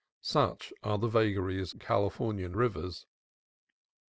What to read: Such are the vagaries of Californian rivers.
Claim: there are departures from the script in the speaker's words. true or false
true